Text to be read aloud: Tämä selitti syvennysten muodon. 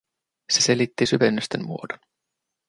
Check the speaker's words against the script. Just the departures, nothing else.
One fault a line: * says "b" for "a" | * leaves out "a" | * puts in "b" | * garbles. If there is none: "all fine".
* says "Se" for "Tämä"